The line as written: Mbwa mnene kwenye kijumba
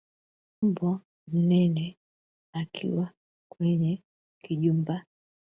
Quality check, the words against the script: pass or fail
fail